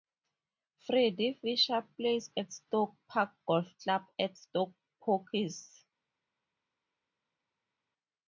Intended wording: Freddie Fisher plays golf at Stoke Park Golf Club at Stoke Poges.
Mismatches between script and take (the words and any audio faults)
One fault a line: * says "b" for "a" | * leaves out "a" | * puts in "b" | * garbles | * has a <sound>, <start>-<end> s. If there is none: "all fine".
* leaves out "golf"